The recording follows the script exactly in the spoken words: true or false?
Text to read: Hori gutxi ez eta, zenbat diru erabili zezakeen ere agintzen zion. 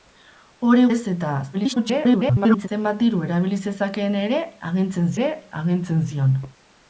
false